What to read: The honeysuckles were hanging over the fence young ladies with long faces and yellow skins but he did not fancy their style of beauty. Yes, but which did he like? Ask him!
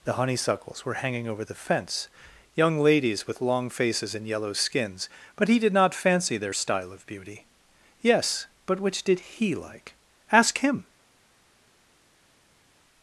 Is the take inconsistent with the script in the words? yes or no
no